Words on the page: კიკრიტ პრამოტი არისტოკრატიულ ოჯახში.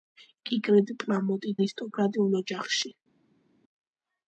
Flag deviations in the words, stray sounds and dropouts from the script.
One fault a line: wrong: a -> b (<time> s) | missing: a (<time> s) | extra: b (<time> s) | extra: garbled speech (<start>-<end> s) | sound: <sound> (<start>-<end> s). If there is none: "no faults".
no faults